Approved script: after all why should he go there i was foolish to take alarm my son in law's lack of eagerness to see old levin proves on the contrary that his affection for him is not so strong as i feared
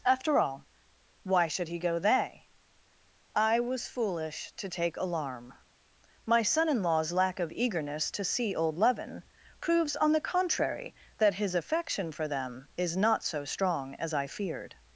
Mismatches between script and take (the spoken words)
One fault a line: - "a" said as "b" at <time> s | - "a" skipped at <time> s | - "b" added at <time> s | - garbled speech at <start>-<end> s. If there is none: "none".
- "there" said as "they" at 2.0 s
- "him" said as "them" at 12.3 s